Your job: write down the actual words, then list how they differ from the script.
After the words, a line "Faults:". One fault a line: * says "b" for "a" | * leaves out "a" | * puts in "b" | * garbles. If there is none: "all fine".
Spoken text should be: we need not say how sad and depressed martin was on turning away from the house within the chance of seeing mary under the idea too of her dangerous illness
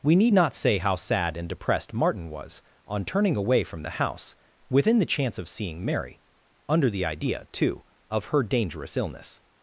we need not say how sad and depressed martin was on turning away from the house within the chance of seeing mary under the idea too of her dangerous illness
Faults:
all fine